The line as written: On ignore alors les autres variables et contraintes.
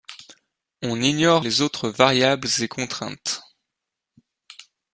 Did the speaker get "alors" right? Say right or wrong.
wrong